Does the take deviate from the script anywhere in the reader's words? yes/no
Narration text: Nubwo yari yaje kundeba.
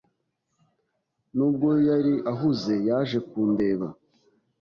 yes